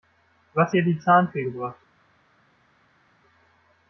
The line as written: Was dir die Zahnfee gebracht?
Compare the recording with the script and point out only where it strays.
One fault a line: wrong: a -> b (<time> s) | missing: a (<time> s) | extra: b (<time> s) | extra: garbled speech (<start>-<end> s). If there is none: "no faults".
no faults